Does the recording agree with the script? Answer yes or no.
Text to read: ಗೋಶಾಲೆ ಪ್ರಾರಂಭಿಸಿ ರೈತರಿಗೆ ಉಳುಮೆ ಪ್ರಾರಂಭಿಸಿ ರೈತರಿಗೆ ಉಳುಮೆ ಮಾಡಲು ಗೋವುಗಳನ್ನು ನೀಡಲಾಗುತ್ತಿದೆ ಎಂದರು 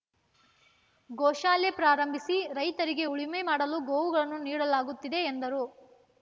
no